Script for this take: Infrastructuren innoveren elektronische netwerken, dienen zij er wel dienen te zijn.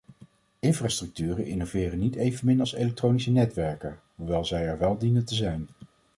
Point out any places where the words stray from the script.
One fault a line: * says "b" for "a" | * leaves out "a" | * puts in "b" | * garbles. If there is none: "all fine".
* puts in "niet evenmin als"
* says "hoewel" for "dienen"